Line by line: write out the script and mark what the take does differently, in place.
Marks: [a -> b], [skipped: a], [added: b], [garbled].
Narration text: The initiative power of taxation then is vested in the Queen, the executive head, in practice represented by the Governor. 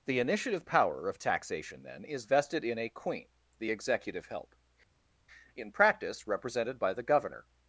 The initiative power of taxation then is vested in [the -> a] Queen, the executive [head, -> help] in practice represented by the Governor.